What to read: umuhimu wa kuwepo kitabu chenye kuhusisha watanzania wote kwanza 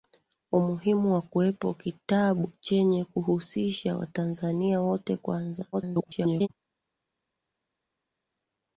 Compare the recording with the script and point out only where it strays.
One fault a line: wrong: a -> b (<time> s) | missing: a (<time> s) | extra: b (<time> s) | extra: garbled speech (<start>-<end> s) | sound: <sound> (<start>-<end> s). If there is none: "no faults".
extra: garbled speech (5.7-6.5 s)